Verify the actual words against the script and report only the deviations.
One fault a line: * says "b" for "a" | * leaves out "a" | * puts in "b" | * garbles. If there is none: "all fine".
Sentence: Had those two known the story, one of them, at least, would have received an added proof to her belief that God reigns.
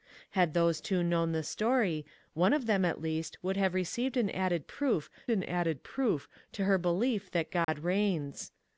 * puts in "an added proof"